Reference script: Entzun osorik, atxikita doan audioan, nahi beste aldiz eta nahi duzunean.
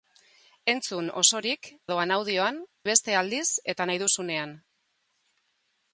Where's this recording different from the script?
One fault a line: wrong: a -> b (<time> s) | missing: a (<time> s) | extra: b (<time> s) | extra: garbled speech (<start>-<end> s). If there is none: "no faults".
missing: atxikita (1.7 s)
missing: nahi (2.6 s)